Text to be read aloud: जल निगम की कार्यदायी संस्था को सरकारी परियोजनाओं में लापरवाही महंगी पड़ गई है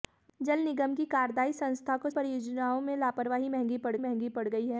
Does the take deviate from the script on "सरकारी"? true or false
true